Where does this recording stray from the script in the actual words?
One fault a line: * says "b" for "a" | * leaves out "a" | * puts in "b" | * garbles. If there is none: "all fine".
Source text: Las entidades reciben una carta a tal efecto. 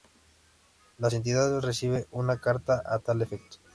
all fine